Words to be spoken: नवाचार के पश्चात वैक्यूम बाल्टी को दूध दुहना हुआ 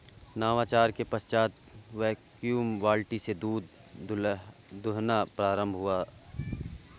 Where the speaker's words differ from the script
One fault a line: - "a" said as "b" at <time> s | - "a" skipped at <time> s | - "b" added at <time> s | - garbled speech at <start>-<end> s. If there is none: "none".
- "को" said as "से" at 3.2 s
- "प्रारंभ" added at 5.3 s